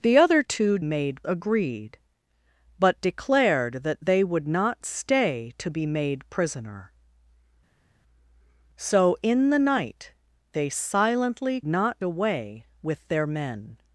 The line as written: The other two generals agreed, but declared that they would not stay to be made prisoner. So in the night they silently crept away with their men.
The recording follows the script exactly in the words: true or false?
false